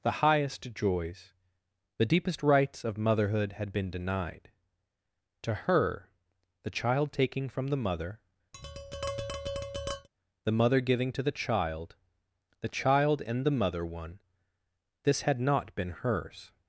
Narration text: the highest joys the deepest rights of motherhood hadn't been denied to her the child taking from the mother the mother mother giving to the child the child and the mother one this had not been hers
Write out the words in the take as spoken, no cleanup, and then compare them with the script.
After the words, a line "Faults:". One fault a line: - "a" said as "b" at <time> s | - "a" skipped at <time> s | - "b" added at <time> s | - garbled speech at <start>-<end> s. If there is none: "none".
the highest joys the deepest rights of motherhood had been denied to her the child taking from the mother the mother giving to the child the child and the mother one this had not been hers
Faults:
- "hadn't" said as "had" at 3.5 s
- "mother" skipped at 10.8 s